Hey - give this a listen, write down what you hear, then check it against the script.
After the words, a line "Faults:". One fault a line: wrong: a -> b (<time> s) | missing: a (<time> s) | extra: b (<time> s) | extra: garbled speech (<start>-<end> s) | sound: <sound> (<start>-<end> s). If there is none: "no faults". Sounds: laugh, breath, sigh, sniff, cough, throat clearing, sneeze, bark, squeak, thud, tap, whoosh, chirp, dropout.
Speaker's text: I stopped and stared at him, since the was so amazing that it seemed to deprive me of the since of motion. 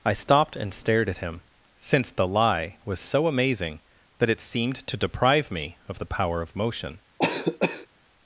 I stopped and stared at him, since the lie was so amazing that it seemed to deprive me of the power of motion.
Faults:
extra: lie (2.3 s)
wrong: since -> power (6.1 s)
sound: cough (7.2-7.9 s)